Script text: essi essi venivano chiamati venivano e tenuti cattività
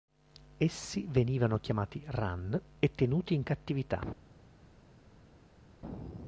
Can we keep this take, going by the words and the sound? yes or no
no